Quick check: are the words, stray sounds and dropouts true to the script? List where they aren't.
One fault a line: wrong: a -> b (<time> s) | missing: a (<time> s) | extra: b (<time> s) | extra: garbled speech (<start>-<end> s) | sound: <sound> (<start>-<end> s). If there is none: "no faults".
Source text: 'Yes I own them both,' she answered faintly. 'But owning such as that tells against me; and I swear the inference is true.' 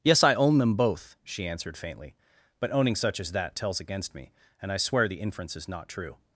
extra: not (5.7 s)